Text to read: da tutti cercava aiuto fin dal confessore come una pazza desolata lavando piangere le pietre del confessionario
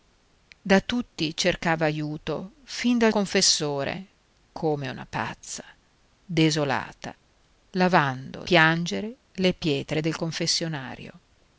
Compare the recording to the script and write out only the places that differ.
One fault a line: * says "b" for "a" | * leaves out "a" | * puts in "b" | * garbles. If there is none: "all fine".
all fine